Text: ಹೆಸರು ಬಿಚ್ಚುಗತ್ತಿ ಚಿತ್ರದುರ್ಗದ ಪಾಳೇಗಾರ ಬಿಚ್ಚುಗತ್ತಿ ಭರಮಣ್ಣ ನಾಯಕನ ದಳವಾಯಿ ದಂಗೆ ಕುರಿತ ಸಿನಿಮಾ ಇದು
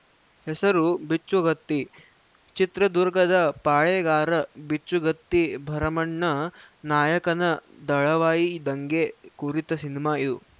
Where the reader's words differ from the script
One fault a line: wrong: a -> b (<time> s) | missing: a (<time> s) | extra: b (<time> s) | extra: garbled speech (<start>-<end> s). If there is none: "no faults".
no faults